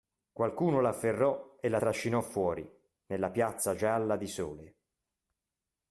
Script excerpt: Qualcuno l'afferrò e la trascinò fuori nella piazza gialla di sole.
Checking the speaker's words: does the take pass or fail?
pass